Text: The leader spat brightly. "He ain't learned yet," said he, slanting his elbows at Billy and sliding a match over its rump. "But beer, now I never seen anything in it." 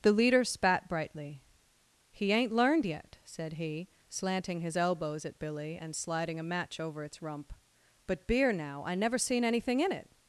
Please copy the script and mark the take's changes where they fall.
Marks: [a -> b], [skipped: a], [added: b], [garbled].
The leader spat brightly. "He ain't learned yet," said he, slanting his elbows at Billy and sliding a match over its rump. "But beer, now I never seen anything in it."